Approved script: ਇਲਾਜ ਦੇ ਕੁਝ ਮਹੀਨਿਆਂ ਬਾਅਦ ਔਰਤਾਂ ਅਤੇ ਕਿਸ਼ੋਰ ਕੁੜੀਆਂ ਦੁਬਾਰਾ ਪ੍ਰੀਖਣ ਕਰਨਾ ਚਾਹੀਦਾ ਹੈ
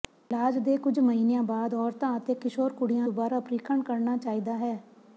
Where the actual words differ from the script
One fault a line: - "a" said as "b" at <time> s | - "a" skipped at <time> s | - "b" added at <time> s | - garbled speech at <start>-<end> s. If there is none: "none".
none